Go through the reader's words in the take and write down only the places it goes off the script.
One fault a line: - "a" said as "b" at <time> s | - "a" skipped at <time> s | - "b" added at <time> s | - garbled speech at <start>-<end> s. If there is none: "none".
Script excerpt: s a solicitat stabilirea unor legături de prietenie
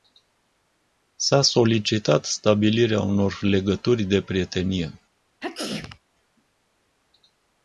none